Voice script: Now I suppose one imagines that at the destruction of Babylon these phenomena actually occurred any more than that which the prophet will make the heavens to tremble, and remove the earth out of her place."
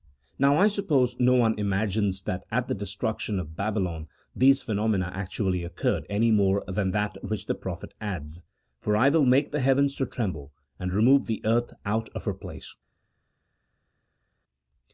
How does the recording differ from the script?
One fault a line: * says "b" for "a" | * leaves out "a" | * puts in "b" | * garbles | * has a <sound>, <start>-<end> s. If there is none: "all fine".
* puts in "no"
* puts in "adds For I"